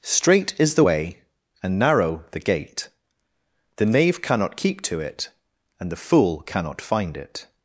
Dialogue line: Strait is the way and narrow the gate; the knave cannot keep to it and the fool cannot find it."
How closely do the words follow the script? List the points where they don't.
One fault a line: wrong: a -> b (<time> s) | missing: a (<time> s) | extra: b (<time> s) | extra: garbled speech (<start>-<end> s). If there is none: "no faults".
no faults